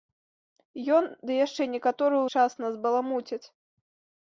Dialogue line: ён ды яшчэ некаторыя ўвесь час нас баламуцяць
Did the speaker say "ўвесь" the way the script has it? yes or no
no